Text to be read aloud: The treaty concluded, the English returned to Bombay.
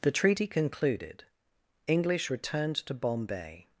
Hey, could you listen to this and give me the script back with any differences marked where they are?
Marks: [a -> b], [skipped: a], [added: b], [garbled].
The treaty concluded, [skipped: the] English returned to Bombay.